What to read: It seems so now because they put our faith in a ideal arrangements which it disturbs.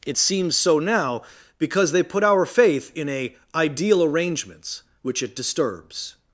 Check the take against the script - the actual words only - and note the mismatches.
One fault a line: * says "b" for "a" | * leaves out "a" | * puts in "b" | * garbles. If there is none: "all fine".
all fine